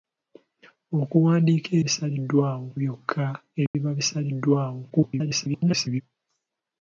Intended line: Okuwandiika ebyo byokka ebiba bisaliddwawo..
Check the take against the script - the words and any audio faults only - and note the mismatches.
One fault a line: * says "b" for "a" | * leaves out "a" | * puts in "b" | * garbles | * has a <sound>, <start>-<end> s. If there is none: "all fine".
* says "bisaliddwawo" for "ebyo"
* has a dropout, 3.7-3.7 s
* garbles